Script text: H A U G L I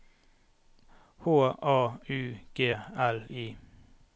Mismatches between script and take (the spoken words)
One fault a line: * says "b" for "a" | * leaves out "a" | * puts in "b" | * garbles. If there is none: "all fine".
all fine